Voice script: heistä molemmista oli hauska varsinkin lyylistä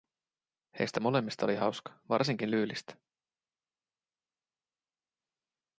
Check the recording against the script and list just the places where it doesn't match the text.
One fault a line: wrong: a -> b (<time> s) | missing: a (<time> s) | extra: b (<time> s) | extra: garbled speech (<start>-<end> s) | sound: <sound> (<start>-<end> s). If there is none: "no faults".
no faults